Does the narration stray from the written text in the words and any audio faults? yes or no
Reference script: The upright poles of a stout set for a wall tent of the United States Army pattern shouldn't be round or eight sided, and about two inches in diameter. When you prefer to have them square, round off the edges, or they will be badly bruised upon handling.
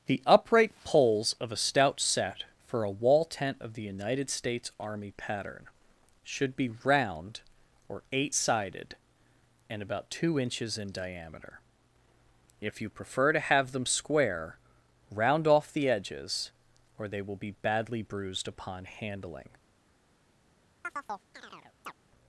yes